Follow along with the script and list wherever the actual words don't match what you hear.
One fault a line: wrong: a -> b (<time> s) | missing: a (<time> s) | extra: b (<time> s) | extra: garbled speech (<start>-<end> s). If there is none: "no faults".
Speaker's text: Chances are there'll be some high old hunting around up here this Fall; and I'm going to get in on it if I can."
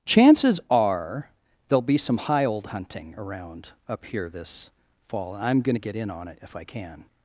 missing: and (5.3 s)